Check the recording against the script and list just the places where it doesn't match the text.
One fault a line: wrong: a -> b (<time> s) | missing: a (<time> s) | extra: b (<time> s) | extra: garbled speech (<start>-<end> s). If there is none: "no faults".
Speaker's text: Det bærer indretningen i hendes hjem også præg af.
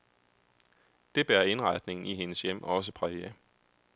no faults